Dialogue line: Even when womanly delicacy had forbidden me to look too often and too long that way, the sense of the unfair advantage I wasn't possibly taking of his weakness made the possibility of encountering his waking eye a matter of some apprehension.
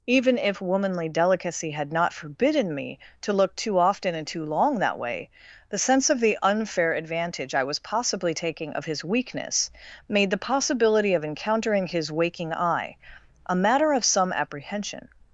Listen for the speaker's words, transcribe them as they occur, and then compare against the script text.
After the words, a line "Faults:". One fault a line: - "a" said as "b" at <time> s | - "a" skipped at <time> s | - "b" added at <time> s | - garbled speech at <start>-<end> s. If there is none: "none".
Even if womanly delicacy had not forbidden me to look too often and too long that way, the sense of the unfair advantage I was possibly taking of his weakness made the possibility of encountering his waking eye a matter of some apprehension.
Faults:
- "when" said as "if" at 0.4 s
- "not" added at 1.9 s
- "wasn't" said as "was" at 7.7 s